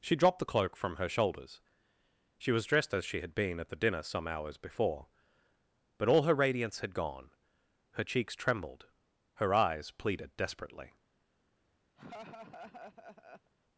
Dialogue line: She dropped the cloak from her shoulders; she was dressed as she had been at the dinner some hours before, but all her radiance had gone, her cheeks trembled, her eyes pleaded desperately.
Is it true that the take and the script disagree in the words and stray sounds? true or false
true